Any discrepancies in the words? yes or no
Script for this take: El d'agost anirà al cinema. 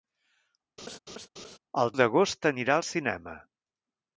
no